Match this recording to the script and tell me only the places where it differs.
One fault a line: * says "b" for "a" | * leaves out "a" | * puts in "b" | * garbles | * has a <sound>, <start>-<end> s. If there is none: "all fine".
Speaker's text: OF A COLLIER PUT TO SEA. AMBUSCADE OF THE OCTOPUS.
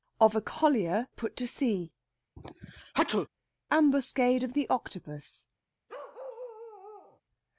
* has a sneeze, 2.4-3.3 s
* has a bark, 5.9-7.2 s